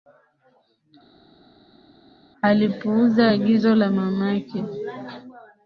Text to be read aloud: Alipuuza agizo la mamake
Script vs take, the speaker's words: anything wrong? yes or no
no